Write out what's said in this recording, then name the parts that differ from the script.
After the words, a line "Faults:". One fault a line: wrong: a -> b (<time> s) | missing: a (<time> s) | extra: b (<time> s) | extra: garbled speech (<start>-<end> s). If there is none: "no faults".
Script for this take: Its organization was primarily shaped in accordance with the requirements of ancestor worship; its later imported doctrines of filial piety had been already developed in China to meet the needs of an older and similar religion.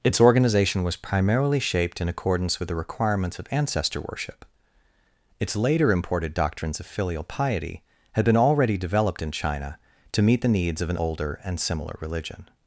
Its organization was primarily shaped in accordance with the requirements of ancestor worship; its later imported doctrines of filial piety had been already developed in China to meet the needs of an older and similar religion.
Faults:
no faults